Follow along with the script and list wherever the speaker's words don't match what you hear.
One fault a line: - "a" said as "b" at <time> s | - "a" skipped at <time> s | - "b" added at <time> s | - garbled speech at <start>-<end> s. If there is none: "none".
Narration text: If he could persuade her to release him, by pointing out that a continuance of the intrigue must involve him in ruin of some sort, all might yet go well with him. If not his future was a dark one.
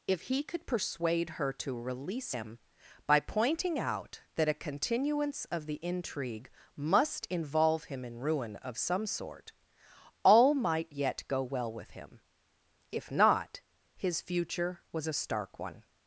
- "dark" said as "stark" at 15.1 s